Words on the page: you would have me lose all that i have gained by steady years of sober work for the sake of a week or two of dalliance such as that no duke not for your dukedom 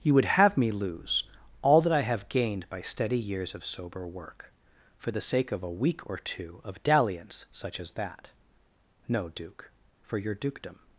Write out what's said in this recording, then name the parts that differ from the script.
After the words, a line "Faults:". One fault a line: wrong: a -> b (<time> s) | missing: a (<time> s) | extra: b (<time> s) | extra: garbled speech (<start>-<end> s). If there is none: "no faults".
you would have me lose all that i have gained by steady years of sober work for the sake of a week or two of dalliance such as that no duke for your dukedom
Faults:
missing: not (9.7 s)